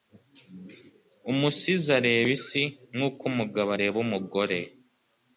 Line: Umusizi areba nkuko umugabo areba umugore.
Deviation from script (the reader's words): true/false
true